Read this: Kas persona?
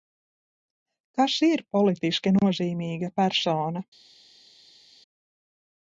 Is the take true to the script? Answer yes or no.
no